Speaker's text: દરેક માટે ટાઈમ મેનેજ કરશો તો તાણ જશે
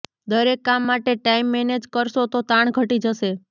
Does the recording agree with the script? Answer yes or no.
no